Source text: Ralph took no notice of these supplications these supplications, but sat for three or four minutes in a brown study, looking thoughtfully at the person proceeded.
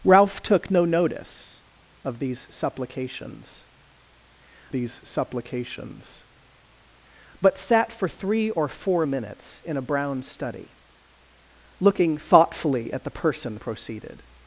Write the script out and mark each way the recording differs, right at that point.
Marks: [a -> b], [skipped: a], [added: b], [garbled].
Ralph took no notice of these supplications these supplications, but sat for three or four minutes in a brown study, looking thoughtfully at the person proceeded.